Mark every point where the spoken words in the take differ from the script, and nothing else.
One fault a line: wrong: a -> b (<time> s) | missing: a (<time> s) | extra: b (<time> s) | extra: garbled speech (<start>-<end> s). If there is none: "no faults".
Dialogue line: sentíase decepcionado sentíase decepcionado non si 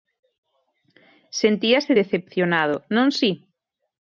missing: sentíase decepcionado (2.8 s)